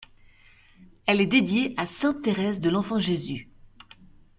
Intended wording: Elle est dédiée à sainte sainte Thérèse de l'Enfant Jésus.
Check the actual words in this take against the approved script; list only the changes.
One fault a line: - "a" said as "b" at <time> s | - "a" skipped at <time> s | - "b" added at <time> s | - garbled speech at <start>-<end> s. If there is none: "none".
- "sainte" skipped at 2.2 s